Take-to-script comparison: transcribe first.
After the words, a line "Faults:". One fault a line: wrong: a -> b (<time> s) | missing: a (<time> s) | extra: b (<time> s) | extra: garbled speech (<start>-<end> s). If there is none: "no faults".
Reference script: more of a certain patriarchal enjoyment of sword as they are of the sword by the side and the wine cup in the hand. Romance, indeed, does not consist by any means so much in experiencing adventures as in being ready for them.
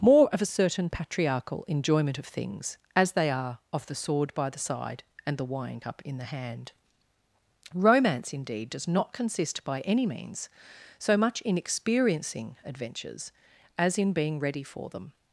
more of a certain patriarchal enjoyment of things as they are of the sword by the side and the wine cup in the hand. Romance, indeed, does not consist by any means so much in experiencing adventures as in being ready for them.
Faults:
wrong: sword -> things (2.2 s)